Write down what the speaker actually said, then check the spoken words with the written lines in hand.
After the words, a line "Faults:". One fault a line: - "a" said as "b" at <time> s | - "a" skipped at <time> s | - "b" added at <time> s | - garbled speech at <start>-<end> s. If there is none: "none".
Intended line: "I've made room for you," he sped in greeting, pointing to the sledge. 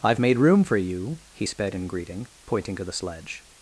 "I've made room for you," he sped in greeting, pointing to the sledge.
Faults:
none